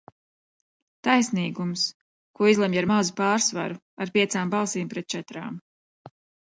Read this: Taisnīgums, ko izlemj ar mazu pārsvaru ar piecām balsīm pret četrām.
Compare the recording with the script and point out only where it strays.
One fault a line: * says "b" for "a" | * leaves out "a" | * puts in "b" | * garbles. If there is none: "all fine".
all fine